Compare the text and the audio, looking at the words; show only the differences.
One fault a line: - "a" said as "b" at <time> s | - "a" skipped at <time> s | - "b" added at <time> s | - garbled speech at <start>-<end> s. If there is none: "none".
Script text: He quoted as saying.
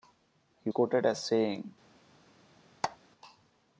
none